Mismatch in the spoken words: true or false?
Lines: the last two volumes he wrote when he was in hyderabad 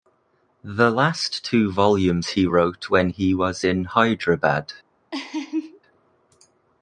false